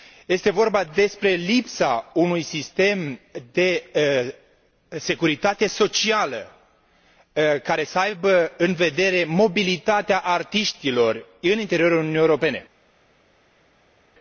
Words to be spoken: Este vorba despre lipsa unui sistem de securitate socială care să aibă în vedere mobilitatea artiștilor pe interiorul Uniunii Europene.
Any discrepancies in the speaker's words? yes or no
yes